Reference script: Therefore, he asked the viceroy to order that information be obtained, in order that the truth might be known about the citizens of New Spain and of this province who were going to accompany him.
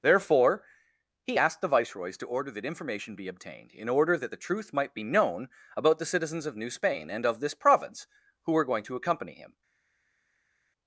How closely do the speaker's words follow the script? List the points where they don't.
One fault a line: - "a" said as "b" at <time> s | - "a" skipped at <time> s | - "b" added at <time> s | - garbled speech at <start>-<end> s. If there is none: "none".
- "viceroy" said as "viceroys" at 1.7 s